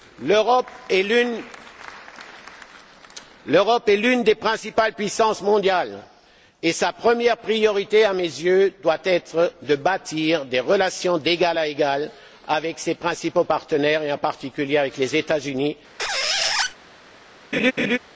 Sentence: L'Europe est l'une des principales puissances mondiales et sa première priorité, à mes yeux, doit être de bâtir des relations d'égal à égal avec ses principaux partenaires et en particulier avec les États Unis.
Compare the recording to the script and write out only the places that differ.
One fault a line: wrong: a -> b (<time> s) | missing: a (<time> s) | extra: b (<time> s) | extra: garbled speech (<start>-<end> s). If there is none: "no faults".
no faults